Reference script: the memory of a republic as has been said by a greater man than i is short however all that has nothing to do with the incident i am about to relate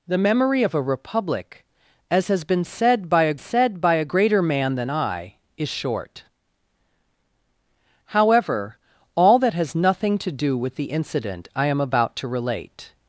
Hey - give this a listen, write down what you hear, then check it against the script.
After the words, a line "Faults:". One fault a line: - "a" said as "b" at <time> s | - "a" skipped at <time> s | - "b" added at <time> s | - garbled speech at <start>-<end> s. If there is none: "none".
the memory of a republic as has been said by a said by a greater man than i is short however all that has nothing to do with the incident i am about to relate
Faults:
- "said by a" added at 3.4 s